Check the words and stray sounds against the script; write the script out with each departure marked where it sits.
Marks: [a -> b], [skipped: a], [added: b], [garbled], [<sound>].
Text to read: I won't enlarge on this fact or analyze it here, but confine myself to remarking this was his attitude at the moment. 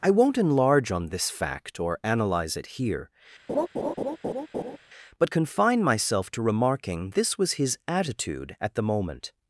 I won't enlarge on this fact or analyze it here, [laugh] but confine myself to remarking this was his attitude at the moment.